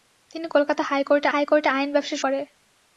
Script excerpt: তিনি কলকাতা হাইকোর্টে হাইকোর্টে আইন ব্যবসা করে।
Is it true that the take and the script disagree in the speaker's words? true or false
false